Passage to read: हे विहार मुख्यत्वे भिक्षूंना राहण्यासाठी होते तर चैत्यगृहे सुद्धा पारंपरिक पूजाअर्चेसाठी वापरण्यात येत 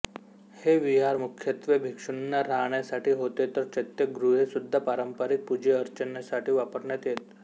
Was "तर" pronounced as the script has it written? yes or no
yes